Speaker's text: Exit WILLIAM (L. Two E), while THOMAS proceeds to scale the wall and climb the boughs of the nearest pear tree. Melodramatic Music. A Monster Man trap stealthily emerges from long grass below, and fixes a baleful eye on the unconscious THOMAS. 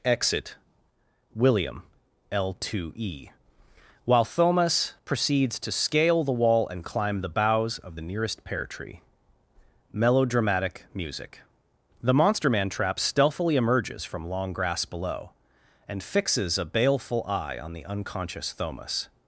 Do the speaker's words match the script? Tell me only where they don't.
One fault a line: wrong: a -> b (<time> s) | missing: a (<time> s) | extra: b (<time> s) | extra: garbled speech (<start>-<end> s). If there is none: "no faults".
wrong: A -> The (12.0 s)